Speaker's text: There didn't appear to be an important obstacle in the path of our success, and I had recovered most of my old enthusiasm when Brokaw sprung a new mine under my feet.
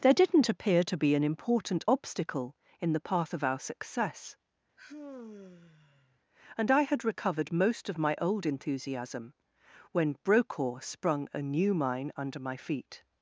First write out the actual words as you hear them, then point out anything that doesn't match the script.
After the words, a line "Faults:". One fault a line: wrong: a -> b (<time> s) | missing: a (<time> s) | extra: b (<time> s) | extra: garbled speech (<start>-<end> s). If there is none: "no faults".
There didn't appear to be an important obstacle in the path of our success, and I had recovered most of my old enthusiasm when Brokaw sprung a new mine under my feet.
Faults:
no faults